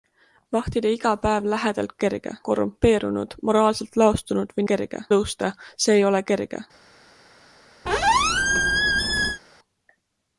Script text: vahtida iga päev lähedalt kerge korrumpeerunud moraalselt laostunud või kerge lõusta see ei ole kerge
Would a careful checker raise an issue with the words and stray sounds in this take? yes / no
yes